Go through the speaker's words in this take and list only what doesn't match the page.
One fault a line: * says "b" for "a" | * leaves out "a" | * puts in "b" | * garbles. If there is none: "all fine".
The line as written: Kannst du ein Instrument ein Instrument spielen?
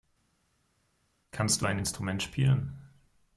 * leaves out "ein Instrument"